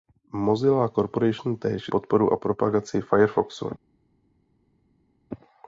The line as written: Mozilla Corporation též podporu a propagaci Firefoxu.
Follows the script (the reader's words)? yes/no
yes